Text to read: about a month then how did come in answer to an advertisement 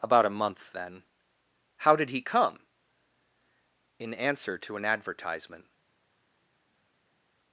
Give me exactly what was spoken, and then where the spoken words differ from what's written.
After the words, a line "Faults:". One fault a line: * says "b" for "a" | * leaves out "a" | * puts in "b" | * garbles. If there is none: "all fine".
about a month then how did he come in answer to an advertisement
Faults:
* puts in "he"